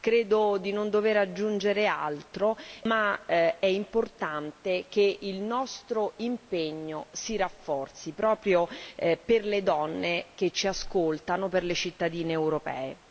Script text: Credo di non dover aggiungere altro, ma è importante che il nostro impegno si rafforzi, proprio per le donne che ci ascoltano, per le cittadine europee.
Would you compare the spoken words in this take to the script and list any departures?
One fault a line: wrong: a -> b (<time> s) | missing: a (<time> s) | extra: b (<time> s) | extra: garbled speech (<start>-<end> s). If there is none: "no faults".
no faults